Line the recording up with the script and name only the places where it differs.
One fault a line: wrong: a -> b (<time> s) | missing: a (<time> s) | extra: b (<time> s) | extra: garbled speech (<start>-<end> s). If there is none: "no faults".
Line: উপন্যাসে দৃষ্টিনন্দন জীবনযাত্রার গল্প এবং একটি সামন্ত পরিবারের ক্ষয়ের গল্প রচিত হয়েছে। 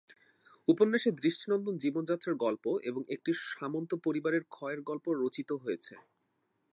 no faults